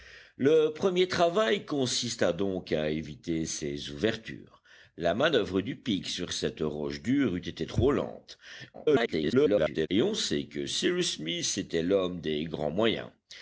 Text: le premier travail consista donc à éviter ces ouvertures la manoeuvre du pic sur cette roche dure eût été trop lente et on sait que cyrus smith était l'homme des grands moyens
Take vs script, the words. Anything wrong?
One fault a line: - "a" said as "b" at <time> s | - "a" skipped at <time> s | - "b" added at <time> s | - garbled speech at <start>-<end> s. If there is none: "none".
- garbled speech at 8.7-9.9 s